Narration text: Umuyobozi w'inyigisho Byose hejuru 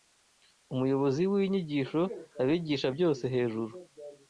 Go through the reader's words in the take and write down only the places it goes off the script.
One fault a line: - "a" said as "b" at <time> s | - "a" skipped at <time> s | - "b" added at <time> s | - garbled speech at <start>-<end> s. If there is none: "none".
- "Abigisha" added at 2.4 s